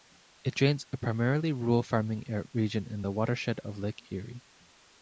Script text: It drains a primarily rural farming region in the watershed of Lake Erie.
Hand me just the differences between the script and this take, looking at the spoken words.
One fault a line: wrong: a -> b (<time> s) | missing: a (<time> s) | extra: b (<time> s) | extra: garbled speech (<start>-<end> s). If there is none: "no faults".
no faults